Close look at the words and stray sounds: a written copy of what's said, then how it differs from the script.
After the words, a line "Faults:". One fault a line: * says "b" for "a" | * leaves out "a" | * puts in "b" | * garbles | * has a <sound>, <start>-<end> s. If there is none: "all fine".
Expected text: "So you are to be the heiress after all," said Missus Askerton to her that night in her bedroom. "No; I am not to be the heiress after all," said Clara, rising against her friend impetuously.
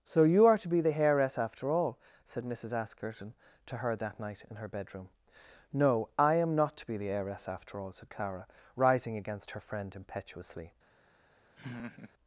"So you are to be the heiress after all," said Missus Askerton to her that night in her bedroom. "No; I am not to be the heiress after all," said Clara, rising against her friend impetuously.
Faults:
* has a laugh, 11.6-12.1 s